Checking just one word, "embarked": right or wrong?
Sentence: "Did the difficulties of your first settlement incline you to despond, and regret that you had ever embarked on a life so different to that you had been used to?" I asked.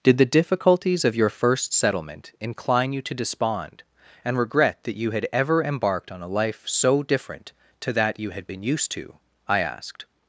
right